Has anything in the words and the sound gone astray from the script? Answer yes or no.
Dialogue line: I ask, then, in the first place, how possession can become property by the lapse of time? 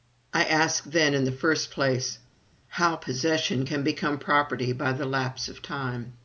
no